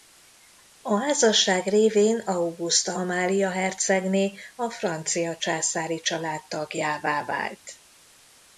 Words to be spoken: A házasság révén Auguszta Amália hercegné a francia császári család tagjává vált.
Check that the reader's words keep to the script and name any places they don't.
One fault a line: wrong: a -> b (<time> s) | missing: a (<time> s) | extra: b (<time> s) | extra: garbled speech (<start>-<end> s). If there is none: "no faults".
no faults